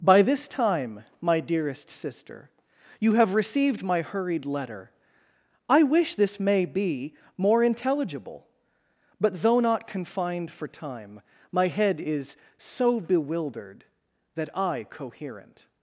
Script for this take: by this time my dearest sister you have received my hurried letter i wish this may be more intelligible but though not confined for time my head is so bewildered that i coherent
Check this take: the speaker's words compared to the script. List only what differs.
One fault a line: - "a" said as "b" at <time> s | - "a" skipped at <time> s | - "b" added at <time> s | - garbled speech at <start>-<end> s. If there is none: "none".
none